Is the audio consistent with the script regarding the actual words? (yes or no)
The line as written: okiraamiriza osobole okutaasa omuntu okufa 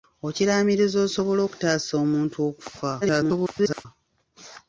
no